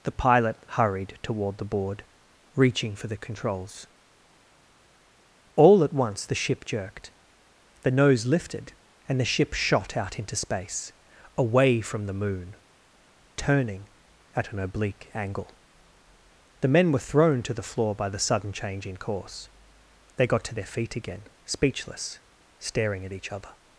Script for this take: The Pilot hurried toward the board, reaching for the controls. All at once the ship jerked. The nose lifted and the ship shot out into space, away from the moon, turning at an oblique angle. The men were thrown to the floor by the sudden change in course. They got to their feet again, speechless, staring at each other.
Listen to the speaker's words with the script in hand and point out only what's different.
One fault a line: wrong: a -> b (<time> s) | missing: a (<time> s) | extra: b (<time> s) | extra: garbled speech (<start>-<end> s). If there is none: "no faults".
no faults